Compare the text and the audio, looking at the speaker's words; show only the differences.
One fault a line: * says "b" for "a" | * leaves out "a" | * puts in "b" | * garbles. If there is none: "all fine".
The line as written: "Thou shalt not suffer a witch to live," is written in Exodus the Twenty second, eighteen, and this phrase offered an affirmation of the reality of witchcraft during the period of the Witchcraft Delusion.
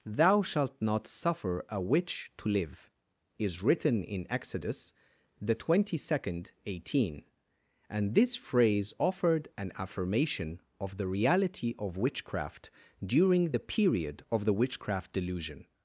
all fine